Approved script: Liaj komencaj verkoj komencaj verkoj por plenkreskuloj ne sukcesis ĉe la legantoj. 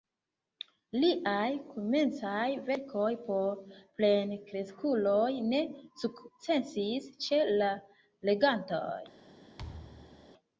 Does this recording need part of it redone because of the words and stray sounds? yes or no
yes